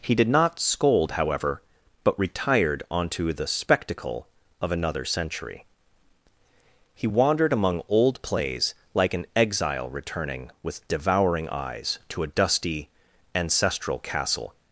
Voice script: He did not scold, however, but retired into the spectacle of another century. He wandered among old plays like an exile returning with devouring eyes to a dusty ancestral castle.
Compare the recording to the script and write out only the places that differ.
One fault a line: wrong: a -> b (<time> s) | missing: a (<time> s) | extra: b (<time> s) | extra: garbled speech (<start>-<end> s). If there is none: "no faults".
wrong: into -> onto (2.9 s)